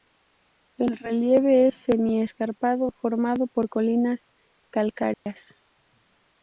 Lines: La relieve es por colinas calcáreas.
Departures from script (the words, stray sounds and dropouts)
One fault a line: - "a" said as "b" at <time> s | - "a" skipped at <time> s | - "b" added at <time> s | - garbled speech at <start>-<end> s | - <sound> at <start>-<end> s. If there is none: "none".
- "La" said as "El" at 0.8 s
- "semi escarpado formado" added at 1.7 s
- dropout at 5.1-5.3 s